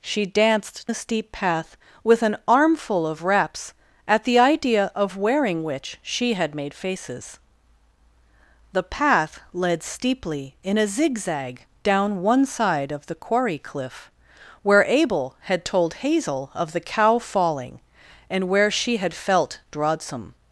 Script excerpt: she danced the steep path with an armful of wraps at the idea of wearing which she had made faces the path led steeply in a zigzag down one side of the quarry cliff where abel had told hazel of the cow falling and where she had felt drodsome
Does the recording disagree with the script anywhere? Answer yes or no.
no